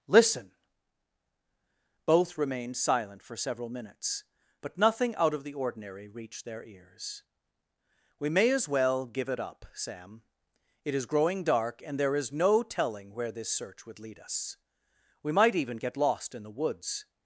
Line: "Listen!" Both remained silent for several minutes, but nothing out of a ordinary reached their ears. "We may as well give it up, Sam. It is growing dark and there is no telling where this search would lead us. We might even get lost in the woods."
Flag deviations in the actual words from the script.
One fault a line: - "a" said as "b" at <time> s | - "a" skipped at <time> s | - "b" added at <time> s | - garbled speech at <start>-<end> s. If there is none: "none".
- "a" said as "the" at 5.4 s